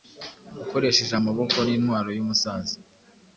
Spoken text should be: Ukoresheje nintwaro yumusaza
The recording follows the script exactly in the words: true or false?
false